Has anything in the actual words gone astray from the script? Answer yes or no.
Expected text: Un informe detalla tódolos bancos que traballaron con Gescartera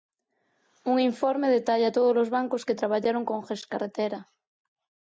no